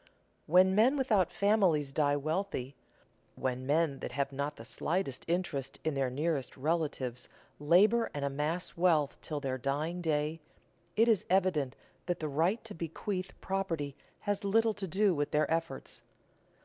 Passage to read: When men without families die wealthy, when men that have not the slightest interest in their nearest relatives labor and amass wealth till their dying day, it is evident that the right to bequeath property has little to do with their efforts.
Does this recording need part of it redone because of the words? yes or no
no